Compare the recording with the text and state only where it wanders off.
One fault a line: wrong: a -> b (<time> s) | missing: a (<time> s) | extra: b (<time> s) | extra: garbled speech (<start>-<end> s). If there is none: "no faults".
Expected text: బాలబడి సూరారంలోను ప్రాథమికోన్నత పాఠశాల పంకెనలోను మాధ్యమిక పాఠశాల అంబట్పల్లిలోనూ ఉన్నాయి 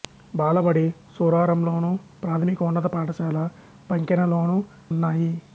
missing: మాధ్యమిక పాఠశాల అంబట్పల్లిలోనూ (4.6 s)